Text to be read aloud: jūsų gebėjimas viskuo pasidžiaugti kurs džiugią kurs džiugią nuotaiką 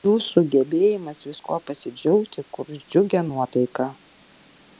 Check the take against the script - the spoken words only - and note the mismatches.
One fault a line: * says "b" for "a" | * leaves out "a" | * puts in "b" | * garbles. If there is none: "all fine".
* leaves out "kurs džiugią"